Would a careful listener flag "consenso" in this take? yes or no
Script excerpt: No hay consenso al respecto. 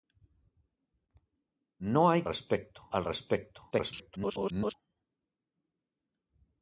yes